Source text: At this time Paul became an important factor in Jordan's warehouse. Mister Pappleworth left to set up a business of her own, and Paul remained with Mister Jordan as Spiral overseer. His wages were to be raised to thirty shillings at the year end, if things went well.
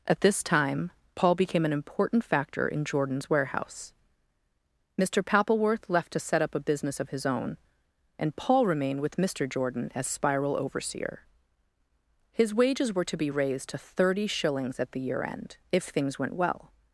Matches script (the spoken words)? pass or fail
fail